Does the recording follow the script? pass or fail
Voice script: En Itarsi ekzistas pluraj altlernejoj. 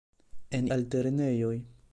fail